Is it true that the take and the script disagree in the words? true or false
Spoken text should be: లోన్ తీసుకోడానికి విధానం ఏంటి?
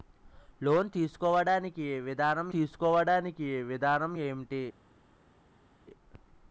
true